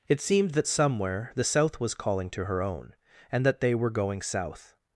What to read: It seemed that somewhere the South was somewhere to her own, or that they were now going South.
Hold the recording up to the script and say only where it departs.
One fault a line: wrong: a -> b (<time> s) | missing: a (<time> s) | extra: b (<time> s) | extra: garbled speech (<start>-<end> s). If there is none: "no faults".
wrong: somewhere -> calling (1.9 s)
wrong: or -> and (3.3 s)
missing: now (3.9 s)